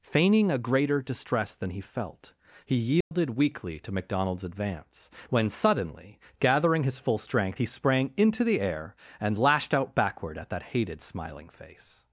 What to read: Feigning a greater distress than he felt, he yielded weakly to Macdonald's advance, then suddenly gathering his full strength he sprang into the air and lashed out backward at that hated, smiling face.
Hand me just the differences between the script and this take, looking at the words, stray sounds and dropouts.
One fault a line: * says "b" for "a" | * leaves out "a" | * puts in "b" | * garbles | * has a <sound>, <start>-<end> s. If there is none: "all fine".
* has a dropout, 3.0-3.1 s
* says "when" for "then"